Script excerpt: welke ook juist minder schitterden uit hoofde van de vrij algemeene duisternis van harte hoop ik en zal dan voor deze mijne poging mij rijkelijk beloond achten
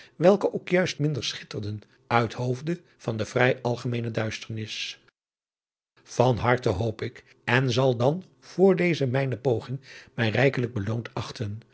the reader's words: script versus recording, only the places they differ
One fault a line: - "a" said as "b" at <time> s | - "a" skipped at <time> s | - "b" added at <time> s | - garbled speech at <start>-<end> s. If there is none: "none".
none